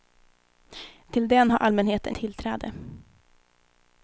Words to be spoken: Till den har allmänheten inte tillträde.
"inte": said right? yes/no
no